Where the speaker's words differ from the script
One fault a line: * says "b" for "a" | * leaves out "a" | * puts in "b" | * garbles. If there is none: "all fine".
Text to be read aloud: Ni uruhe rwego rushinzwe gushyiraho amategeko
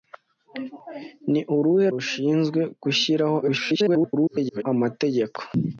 * leaves out "rwego"
* garbles